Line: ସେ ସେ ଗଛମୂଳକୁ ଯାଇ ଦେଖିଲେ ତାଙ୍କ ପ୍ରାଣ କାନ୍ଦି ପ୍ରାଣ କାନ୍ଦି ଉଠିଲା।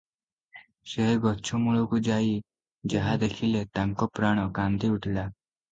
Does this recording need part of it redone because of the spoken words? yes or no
yes